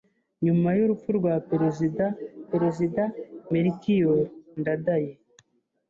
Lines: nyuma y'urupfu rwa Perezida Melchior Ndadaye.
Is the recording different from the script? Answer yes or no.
yes